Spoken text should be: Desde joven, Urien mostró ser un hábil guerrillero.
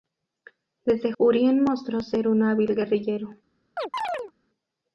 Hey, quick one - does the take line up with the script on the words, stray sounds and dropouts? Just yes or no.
no